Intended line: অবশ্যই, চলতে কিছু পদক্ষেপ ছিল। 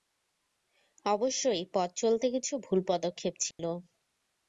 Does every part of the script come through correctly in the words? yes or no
no